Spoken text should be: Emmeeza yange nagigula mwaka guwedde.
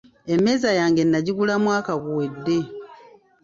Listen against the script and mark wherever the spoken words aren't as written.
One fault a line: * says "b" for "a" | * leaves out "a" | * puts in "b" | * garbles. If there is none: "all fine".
all fine